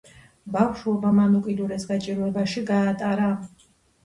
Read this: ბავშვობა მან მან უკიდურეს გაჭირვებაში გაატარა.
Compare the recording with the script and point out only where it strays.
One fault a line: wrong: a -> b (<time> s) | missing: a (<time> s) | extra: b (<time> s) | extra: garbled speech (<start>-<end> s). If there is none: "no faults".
missing: მან (1.4 s)